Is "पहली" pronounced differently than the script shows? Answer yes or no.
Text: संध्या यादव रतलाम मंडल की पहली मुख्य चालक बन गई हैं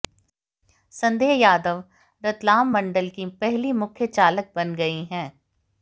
no